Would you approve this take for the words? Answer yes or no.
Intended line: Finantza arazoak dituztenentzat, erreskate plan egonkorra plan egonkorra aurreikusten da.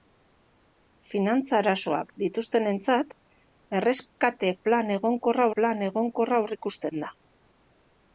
yes